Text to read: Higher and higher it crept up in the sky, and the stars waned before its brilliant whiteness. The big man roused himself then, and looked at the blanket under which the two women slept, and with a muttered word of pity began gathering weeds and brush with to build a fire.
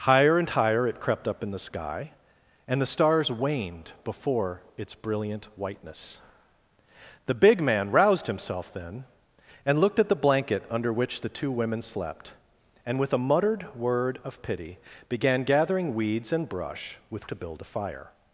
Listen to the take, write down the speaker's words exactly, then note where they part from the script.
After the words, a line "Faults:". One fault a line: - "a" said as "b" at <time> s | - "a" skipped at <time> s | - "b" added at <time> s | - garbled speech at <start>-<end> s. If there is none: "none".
Higher and higher it crept up in the sky, and the stars waned before its brilliant whiteness. The big man roused himself then, and looked at the blanket under which the two women slept, and with a muttered word of pity began gathering weeds and brush with to build a fire.
Faults:
none